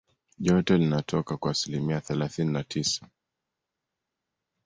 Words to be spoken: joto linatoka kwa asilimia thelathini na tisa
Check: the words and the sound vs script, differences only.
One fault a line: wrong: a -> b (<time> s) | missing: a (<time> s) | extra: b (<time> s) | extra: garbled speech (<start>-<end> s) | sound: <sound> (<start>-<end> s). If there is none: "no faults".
no faults